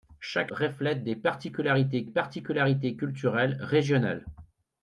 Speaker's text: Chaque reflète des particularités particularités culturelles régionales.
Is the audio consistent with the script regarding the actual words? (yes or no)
yes